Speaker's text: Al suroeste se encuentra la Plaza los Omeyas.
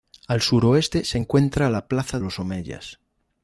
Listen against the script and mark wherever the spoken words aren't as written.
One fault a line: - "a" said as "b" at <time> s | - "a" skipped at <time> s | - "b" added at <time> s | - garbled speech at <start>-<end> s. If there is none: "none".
none